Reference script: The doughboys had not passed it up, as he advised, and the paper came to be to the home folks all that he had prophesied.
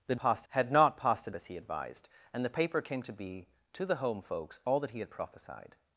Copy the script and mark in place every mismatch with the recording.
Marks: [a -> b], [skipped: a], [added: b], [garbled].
The [doughboys -> passed] had not passed it [skipped: up,] as he advised, and the paper came to be to the home folks all that he had prophesied.